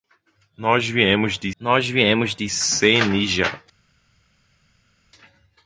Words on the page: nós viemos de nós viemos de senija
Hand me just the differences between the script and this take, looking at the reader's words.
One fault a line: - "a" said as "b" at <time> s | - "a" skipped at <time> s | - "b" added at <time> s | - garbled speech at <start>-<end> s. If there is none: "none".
none